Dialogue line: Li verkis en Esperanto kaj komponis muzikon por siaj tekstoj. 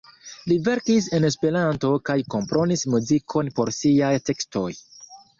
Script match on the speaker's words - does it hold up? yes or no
yes